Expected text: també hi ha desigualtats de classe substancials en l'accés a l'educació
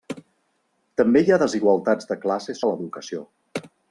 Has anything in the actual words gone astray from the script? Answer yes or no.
yes